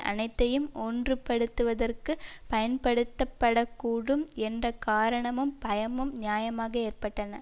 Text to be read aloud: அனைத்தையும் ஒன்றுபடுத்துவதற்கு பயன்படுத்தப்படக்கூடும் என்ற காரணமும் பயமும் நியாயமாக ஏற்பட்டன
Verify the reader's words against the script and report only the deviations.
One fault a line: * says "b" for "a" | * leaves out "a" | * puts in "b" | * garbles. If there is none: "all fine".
all fine